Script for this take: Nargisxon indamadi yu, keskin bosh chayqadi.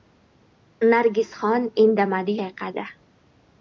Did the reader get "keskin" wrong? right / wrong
wrong